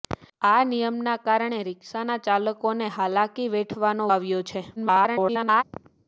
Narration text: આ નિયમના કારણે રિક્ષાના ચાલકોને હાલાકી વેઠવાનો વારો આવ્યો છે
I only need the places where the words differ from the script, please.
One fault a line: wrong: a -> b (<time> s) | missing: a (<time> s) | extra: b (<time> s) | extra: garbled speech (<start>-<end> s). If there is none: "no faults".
missing: વારો (4.1 s)
extra: garbled speech (4.8-5.6 s)